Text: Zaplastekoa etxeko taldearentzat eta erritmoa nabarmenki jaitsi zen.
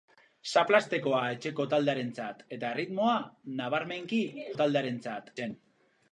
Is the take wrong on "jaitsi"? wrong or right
wrong